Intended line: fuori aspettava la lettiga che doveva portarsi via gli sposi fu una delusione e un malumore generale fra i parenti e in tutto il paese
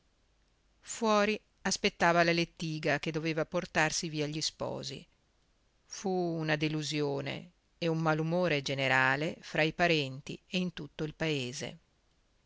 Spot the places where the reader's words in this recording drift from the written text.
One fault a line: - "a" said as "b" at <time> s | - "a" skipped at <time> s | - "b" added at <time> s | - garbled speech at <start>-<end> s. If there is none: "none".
none